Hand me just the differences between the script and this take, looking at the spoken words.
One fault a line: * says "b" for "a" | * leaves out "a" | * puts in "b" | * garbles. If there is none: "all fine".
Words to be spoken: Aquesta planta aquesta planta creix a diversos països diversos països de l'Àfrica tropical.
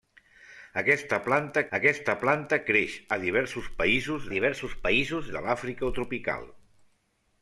all fine